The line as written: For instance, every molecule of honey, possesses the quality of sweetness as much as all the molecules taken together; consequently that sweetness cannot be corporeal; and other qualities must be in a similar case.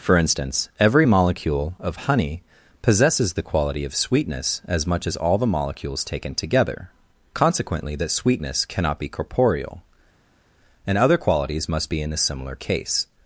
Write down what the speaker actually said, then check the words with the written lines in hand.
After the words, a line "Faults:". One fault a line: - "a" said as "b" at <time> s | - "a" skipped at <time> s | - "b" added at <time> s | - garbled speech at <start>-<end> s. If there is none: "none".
For instance, every molecule of honey, possesses the quality of sweetness as much as all the molecules taken together; consequently that sweetness cannot be corporeal; and other qualities must be in a similar case.
Faults:
none